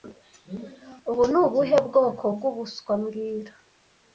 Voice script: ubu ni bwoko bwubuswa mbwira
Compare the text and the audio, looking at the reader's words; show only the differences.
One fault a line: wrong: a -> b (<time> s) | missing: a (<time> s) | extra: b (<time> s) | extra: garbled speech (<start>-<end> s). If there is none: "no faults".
extra: ubuhe (1.4 s)